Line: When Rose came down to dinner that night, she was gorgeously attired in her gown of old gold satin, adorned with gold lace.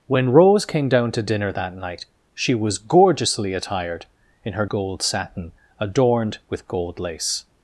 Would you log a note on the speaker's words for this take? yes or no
yes